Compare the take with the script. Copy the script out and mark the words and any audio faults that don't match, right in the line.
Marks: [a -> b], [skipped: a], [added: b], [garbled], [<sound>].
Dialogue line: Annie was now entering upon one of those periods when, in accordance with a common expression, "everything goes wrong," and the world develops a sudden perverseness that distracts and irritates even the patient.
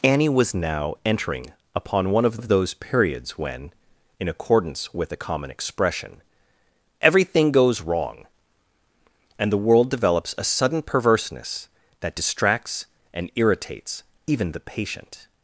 Annie was now entering upon one of [added: of] those periods when, in accordance with a common expression, "everything goes wrong," and the world develops a sudden perverseness that distracts and irritates even the patient.